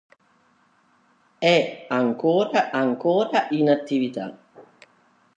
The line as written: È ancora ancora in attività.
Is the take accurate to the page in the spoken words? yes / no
yes